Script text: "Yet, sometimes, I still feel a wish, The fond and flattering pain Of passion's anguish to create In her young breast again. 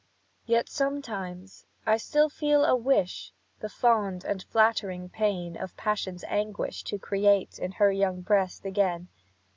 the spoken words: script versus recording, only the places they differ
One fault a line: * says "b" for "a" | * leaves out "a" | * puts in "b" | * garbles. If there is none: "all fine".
all fine